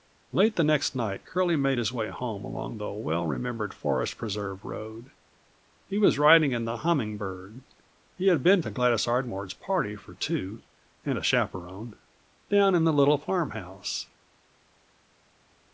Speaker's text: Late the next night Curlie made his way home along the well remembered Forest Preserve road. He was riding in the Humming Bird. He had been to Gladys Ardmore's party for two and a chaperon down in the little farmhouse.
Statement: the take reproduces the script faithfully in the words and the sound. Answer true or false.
true